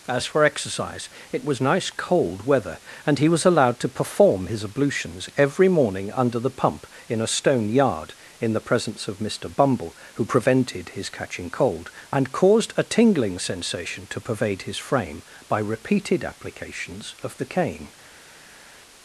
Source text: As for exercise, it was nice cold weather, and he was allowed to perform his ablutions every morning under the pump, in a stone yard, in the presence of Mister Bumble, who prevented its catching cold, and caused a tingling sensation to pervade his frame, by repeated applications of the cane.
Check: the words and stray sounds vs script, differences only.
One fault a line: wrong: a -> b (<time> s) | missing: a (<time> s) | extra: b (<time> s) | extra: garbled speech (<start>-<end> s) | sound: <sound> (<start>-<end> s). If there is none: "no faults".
wrong: its -> his (10.9 s)